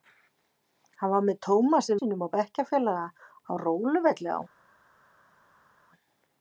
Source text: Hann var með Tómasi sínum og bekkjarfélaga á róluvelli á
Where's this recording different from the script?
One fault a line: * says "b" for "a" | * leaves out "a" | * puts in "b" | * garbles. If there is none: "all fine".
all fine